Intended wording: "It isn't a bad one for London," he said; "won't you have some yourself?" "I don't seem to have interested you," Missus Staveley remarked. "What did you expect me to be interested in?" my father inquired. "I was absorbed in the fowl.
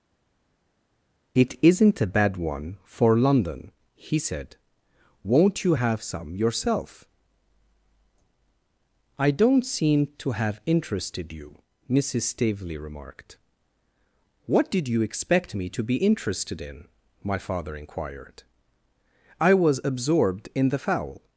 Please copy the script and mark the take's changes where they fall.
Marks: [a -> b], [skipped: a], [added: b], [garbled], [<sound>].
"It isn't a bad one for London," he said; "won't you have some yourself?" "I don't seem to have interested you," Missus Staveley remarked. "What did you expect me to be interested in?" my father inquired. "I was absorbed in the fowl.